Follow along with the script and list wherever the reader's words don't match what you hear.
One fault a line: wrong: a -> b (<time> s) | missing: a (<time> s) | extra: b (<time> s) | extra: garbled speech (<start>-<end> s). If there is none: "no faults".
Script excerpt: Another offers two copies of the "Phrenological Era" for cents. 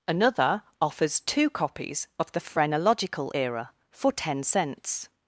extra: ten (4.1 s)